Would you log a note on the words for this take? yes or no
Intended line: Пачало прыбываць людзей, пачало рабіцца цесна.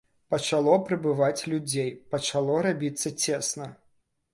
no